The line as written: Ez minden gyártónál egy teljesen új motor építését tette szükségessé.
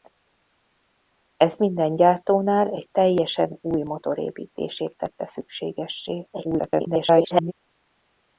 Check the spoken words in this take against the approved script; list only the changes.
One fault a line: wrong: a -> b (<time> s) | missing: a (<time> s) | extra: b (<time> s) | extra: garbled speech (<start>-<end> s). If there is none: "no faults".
extra: garbled speech (6.3-7.5 s)